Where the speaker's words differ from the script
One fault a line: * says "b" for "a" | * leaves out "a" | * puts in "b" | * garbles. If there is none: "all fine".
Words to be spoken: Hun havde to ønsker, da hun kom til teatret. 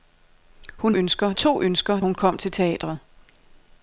* says "ønsker" for "havde"
* leaves out "da"